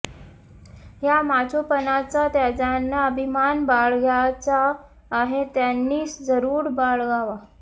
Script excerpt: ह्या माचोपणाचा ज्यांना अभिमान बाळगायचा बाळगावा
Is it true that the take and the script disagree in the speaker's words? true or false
true